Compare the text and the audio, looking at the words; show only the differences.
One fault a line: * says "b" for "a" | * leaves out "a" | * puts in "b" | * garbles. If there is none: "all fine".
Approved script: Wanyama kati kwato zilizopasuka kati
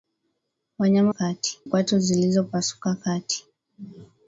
all fine